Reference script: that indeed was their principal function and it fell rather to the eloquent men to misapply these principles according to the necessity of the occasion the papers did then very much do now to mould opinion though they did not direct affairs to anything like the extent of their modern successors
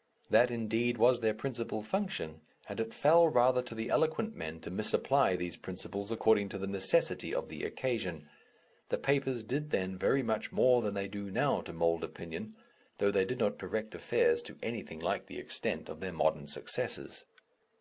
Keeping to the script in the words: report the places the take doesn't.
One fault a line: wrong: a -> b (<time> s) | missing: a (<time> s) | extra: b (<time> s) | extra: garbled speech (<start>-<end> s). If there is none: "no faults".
extra: more than they (10.5 s)